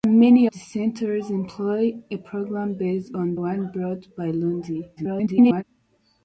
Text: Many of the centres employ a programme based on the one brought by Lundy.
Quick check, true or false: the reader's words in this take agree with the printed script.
false